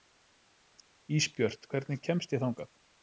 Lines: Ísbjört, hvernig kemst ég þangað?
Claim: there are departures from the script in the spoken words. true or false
false